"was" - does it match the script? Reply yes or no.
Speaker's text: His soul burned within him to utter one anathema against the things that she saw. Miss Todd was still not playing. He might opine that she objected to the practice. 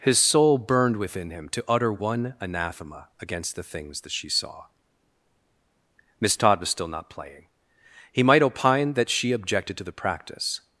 yes